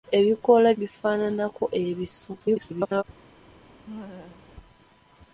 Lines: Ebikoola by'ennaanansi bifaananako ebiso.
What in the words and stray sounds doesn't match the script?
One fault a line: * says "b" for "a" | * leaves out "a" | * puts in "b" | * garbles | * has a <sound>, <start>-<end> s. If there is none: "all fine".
* leaves out "by'ennaanansi"
* garbles
* has a laugh, 3.9-4.5 s